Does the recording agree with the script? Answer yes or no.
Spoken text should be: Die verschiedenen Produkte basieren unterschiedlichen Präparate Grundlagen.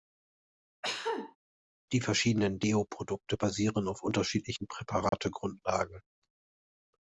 no